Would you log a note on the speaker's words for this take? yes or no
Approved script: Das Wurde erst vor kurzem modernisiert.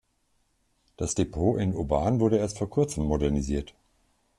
yes